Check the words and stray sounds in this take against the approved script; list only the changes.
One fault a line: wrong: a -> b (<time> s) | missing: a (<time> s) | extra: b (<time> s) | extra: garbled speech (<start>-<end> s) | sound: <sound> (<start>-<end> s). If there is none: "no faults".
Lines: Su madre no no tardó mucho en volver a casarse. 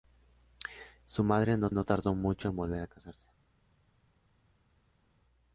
no faults